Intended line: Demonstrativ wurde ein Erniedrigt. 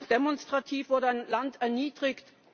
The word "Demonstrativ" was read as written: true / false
true